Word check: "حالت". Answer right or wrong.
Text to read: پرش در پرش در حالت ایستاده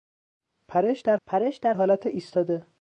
right